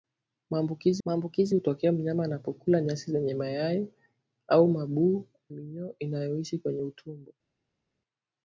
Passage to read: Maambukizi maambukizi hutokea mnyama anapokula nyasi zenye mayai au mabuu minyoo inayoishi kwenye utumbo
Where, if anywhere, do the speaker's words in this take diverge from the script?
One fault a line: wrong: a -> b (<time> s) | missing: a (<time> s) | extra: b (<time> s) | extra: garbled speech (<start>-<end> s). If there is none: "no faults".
no faults